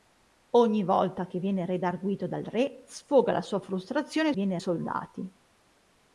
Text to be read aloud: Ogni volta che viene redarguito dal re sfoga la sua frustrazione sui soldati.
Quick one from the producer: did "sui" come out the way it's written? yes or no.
no